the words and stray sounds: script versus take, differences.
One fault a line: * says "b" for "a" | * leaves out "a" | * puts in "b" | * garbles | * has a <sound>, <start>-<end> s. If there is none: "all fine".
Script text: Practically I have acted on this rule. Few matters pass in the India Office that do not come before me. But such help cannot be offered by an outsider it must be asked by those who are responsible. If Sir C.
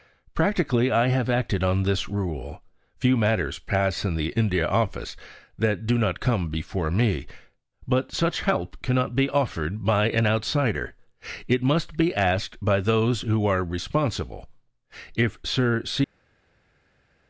all fine